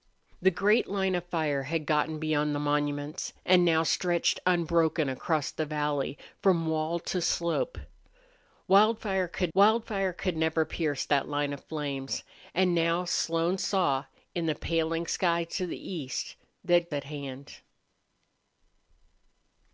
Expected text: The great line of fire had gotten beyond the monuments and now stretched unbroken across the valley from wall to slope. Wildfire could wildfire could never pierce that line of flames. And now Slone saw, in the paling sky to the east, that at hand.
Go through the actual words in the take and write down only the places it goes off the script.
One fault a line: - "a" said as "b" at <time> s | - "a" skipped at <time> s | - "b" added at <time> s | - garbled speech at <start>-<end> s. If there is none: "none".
none